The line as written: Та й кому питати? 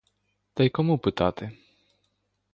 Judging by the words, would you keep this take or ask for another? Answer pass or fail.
pass